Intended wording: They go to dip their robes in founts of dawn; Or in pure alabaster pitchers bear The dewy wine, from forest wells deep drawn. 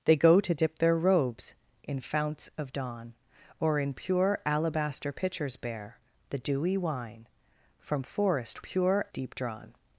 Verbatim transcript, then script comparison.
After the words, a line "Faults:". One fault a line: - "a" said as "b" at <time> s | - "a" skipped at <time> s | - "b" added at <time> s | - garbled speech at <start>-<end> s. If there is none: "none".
They go to dip their robes in founts of dawn; Or in pure alabaster pitchers bear The dewy wine, from forest pure deep drawn.
Faults:
- "wells" said as "pure" at 8.6 s